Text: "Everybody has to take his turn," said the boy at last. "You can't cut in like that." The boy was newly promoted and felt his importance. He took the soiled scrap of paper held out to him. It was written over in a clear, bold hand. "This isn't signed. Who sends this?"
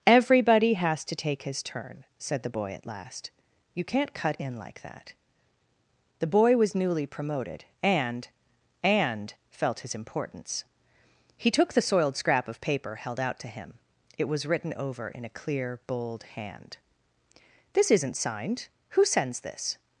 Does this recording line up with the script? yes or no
no